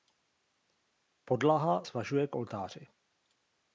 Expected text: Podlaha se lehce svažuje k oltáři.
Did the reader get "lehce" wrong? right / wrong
wrong